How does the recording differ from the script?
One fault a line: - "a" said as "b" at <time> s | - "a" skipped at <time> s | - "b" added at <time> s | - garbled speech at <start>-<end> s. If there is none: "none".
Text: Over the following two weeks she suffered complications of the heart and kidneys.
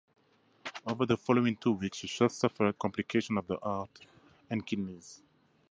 none